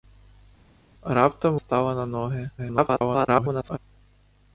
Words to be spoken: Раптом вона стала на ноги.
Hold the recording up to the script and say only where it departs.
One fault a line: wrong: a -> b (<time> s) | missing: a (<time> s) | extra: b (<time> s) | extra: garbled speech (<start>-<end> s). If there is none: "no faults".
missing: вона (1.6 s)
extra: garbled speech (2.6-3.8 s)